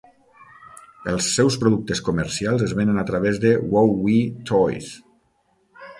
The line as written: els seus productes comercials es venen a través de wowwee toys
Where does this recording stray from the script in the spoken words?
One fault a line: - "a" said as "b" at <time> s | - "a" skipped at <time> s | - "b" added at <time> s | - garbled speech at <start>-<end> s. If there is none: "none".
none